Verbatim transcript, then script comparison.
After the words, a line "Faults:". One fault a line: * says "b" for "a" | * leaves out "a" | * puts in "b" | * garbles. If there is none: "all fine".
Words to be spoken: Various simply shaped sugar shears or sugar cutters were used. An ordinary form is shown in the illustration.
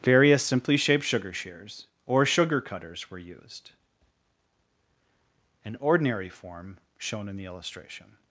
Various simply shaped sugar shears or sugar cutters were used. An ordinary form shown in the illustration.
Faults:
* leaves out "is"